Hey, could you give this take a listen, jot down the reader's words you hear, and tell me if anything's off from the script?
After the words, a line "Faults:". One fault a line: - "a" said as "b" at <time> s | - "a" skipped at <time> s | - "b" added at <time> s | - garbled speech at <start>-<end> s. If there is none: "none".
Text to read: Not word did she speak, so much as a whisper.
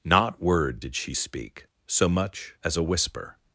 Not word did she speak, so much as a whisper.
Faults:
none